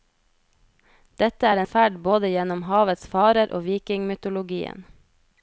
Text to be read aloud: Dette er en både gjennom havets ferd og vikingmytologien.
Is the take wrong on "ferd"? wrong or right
wrong